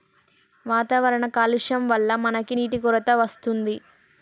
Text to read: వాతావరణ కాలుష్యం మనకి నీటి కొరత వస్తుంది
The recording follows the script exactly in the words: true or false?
false